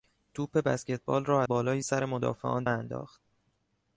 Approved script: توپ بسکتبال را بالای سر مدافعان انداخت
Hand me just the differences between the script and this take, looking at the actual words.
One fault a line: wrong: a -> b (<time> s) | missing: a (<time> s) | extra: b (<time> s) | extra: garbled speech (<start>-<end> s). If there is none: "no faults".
no faults